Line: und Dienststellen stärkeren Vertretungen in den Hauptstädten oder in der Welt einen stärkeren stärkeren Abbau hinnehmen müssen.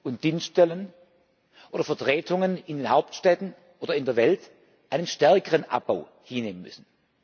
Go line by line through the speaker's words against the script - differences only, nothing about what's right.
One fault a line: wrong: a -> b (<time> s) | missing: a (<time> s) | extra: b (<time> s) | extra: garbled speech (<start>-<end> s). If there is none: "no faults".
wrong: stärkeren -> oder (1.7 s)
missing: stärkeren (5.6 s)